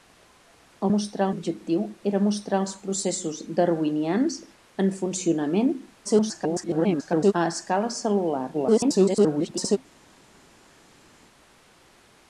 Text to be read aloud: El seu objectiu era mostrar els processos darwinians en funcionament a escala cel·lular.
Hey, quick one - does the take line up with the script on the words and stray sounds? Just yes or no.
no